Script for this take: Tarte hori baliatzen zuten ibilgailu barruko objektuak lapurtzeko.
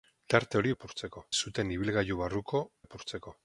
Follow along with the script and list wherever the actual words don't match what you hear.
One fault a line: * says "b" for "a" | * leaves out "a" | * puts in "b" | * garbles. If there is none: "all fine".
* says "lapurtzeko" for "baliatzen"
* leaves out "objektuak"